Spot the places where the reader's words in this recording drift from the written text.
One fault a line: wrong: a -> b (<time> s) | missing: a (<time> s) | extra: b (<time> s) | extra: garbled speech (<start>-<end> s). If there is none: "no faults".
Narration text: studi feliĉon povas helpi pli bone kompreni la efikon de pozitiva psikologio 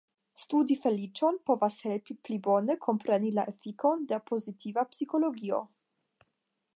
no faults